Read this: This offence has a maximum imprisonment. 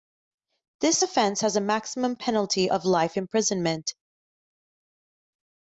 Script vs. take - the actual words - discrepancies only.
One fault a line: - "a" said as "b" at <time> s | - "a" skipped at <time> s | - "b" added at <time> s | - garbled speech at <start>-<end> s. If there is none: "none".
- "penalty of life" added at 2.2 s